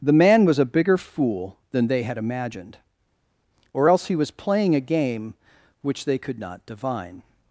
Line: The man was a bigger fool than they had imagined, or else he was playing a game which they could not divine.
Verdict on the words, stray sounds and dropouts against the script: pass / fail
pass